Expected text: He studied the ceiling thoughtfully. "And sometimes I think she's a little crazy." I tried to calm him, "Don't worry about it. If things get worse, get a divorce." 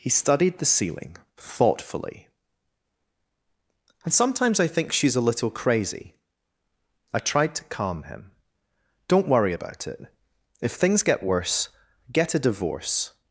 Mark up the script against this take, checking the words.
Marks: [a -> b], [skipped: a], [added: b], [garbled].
He studied the ceiling thoughtfully. "And sometimes I think she's a little crazy." I tried to calm him, "Don't worry about it. If things get worse, get a divorce."